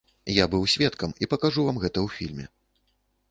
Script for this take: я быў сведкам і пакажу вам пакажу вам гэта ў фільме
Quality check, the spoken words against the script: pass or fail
fail